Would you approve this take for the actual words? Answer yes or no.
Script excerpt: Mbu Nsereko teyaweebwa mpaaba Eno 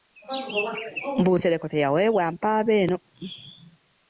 yes